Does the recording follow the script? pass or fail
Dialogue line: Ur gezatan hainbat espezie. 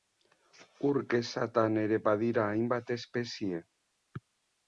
fail